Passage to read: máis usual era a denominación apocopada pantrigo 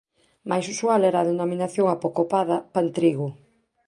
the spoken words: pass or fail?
pass